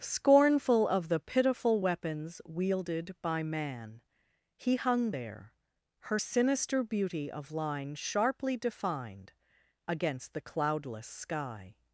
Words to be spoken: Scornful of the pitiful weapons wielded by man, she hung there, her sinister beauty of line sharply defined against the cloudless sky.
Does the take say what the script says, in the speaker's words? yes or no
no